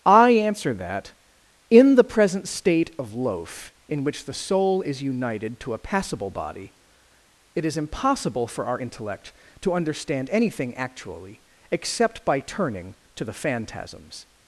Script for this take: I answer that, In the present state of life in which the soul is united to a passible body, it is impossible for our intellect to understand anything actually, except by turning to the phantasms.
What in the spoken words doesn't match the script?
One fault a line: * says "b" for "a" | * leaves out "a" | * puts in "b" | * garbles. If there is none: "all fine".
* says "loaf" for "life"